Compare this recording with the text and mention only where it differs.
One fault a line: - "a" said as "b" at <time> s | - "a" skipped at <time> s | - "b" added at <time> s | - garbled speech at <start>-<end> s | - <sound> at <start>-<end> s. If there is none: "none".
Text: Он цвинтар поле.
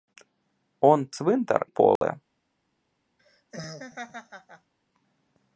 - dropout at 2.0-2.0 s
- laugh at 3.2-4.7 s